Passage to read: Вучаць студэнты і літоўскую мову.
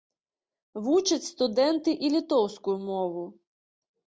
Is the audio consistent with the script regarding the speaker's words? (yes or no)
yes